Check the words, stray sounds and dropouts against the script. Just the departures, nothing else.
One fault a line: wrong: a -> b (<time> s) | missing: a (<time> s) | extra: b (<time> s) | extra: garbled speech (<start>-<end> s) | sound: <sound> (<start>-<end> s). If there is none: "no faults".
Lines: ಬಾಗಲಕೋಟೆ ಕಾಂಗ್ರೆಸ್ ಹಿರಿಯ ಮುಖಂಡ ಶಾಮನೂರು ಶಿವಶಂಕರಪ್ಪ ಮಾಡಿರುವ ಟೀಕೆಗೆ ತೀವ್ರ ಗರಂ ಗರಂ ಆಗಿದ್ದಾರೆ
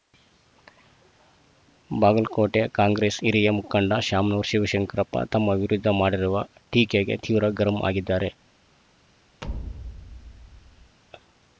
extra: ತಮ್ಮ ವಿರುದ್ಧ (5.3 s)
missing: ಗರಂ (7.8 s)
sound: thud (9.4-11.0 s)